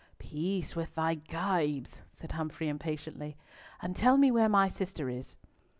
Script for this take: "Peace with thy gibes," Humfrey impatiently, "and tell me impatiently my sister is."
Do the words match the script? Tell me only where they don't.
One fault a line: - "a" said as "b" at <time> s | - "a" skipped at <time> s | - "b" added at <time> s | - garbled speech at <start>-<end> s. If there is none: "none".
- "said" added at 2.1 s
- "impatiently" said as "where" at 4.3 s